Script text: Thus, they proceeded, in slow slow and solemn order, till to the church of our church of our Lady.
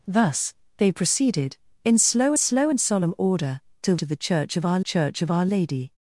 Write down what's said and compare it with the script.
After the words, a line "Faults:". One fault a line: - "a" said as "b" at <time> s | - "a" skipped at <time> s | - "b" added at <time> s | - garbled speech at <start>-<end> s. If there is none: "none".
Thus, they proceeded, in slow slow and solemn order, till to the church of our church of our Lady.
Faults:
none